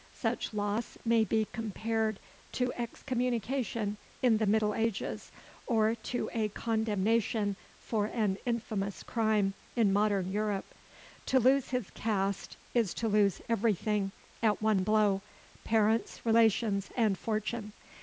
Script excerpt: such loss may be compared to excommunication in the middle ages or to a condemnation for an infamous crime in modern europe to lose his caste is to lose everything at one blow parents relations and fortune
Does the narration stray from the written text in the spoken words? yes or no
no